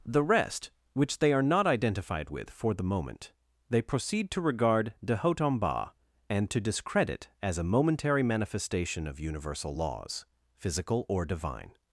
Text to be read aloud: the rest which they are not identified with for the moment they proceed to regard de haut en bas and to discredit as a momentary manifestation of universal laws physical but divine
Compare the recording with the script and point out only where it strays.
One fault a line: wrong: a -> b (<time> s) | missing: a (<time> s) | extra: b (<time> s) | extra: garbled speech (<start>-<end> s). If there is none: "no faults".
wrong: but -> or (11.1 s)